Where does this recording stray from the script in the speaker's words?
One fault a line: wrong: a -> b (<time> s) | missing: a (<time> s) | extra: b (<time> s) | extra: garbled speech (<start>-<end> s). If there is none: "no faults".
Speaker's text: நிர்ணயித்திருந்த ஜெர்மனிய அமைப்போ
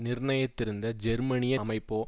no faults